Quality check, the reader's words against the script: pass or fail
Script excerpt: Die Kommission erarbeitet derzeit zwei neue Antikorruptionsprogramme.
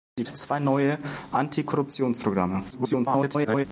fail